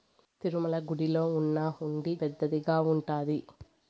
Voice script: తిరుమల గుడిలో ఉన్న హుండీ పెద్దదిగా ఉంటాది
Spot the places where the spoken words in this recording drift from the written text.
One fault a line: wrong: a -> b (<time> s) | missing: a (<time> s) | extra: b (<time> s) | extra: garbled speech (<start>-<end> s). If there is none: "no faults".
no faults